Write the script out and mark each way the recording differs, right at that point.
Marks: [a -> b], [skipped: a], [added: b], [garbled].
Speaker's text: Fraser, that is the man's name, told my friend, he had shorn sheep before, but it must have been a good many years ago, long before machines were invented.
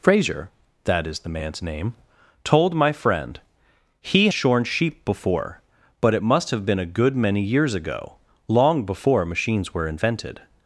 Fraser, that is the man's name, told my friend, he [skipped: had] shorn sheep before, but it must have been a good many years ago, long before machines were invented.